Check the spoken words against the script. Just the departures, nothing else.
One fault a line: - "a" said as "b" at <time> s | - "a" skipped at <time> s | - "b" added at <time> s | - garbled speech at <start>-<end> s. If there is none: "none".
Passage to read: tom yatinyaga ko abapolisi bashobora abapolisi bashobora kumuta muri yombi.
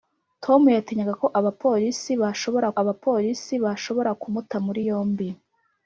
none